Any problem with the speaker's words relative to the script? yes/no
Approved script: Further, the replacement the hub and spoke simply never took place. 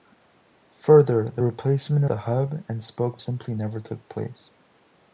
no